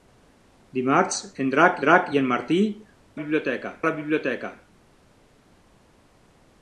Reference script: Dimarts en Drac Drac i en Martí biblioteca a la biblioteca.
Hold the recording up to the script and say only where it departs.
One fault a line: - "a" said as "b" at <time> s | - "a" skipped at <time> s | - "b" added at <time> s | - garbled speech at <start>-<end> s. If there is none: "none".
none